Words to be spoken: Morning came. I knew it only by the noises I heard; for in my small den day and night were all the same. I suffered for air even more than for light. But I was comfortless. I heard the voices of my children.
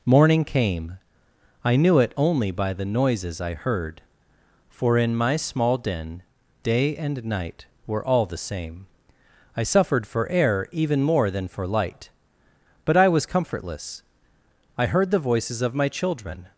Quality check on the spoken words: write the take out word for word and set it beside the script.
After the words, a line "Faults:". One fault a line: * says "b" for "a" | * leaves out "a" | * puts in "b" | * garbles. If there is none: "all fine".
Morning came. I knew it only by the noises I heard; for in my small den day and night were all the same. I suffered for air even more than for light. But I was comfortless. I heard the voices of my children.
Faults:
all fine